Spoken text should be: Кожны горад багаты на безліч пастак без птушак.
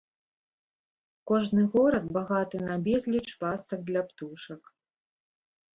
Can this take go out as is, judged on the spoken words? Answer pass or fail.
fail